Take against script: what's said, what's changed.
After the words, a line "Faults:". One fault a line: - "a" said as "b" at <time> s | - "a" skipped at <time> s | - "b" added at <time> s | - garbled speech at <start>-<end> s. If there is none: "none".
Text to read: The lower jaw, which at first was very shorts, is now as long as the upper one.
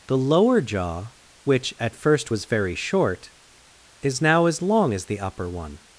The lower jaw, which at first was very short, is now as long as the upper one.
Faults:
- "shorts" said as "short" at 2.8 s